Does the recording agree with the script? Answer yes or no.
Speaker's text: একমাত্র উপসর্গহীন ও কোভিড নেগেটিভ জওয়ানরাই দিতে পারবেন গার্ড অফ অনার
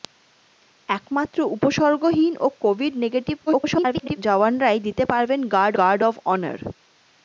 no